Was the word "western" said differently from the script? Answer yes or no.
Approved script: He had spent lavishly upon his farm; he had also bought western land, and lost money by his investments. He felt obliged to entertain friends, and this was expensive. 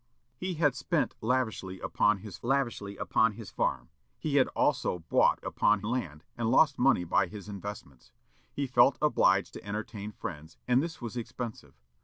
yes